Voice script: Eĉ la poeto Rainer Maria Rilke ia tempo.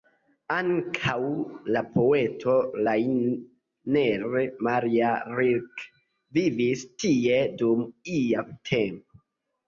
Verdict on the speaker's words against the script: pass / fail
fail